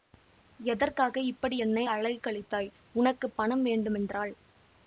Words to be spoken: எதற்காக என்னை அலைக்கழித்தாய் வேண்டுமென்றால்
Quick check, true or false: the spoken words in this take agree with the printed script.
false